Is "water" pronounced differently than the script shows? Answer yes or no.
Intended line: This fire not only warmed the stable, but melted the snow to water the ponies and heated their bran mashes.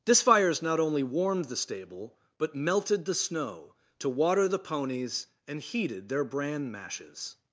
no